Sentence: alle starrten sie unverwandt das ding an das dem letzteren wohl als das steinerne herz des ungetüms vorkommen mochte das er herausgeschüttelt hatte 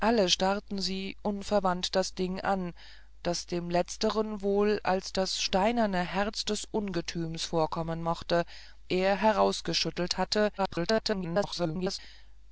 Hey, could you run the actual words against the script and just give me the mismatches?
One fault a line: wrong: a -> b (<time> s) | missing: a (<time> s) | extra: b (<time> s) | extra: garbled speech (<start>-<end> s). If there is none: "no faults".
missing: das (8.4 s)
extra: garbled speech (10.6-12.0 s)